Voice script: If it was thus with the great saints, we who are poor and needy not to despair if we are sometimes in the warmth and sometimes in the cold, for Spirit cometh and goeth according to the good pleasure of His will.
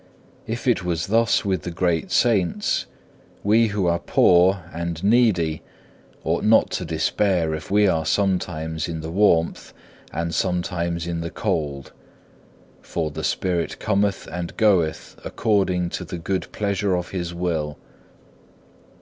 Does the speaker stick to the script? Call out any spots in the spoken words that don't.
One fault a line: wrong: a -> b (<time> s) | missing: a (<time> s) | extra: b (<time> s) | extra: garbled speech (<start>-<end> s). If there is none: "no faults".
extra: ought (6.2 s)
extra: the (13.1 s)